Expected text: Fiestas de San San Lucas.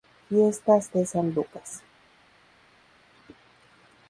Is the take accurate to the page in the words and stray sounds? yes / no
no